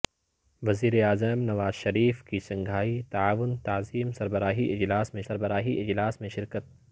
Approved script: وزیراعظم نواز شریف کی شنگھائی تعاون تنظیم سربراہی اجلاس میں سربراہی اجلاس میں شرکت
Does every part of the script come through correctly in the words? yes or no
yes